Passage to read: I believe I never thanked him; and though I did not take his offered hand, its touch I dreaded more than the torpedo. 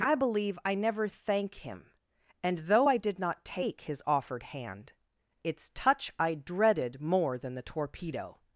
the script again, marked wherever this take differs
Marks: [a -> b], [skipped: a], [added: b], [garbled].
I believe I never [thanked -> thank] him; and though I did not take his offered hand, its touch I dreaded more than the torpedo.